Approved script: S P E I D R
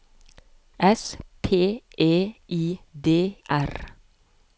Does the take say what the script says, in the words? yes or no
yes